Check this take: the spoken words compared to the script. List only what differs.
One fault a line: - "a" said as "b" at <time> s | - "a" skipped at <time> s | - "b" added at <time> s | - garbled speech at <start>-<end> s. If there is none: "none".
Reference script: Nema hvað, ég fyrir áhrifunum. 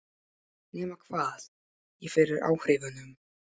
none